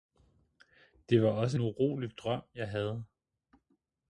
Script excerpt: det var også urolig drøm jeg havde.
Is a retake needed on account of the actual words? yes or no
no